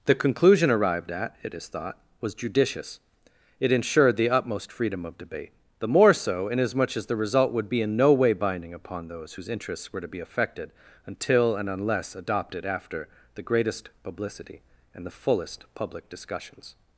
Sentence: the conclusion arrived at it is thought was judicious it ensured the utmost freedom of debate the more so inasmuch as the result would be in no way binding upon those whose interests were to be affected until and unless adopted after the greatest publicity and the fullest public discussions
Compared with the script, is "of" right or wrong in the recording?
right